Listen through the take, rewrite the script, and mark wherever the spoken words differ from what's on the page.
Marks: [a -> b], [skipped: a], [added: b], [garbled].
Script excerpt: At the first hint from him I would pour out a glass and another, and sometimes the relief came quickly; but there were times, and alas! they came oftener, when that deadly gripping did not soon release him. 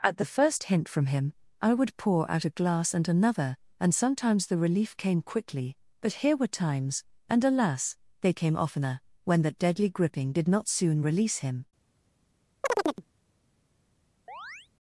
At the first hint from him I would pour out a glass and another, and sometimes the relief came quickly; but [there -> here] were times, and alas! they came oftener, when that deadly gripping did not soon release him.